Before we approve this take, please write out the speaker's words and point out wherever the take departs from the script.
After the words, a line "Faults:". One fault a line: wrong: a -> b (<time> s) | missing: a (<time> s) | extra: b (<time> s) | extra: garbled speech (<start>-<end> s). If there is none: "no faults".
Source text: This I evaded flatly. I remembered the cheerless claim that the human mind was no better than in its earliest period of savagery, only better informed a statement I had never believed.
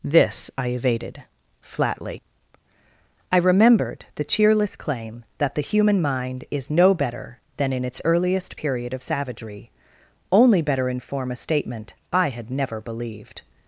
This I evaded flatly. I remembered the cheerless claim that the human mind is no better than in its earliest period of savagery, only better inform a statement I had never believed.
Faults:
wrong: was -> is (6.5 s)
wrong: informed -> inform (10.9 s)